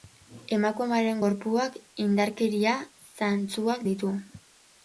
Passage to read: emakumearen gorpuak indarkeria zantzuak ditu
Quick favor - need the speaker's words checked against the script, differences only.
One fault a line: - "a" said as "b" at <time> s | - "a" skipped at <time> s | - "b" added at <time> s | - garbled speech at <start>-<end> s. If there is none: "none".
none